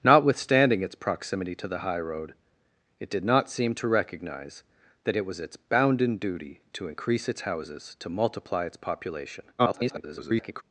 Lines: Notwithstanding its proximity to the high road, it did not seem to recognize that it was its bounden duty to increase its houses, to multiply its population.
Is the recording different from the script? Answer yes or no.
yes